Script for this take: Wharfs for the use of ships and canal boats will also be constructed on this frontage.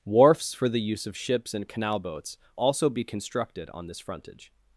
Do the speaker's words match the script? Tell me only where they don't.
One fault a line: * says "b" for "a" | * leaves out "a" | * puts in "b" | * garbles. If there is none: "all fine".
* leaves out "will"